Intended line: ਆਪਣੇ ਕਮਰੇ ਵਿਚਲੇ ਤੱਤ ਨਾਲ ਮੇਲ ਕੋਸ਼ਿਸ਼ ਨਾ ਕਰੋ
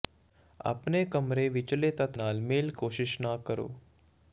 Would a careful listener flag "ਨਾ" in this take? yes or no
no